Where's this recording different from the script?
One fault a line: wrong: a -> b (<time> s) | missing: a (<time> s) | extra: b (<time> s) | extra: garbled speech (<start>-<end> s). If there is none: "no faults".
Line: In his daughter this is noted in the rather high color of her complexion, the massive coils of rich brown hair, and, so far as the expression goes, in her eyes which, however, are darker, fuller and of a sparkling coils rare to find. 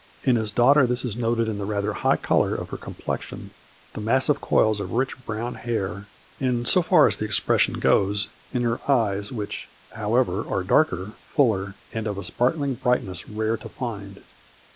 wrong: coils -> brightness (12.7 s)